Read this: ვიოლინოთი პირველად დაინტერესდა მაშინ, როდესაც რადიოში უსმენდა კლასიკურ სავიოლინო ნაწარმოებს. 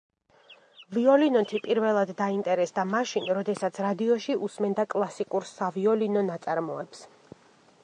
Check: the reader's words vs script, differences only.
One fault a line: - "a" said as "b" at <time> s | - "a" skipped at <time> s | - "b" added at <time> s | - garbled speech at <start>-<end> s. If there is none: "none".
none